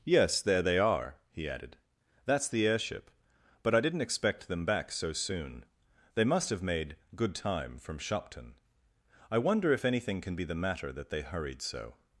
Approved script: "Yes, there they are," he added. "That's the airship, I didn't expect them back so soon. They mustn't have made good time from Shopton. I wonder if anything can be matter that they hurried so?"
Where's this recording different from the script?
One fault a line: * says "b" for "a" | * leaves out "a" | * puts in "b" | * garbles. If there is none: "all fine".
* puts in "but"
* says "must" for "mustn't"
* puts in "the"